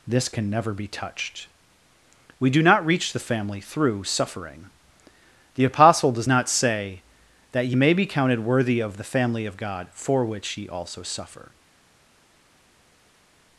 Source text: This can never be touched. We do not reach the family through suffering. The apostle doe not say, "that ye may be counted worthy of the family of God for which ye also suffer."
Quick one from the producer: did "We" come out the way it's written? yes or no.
yes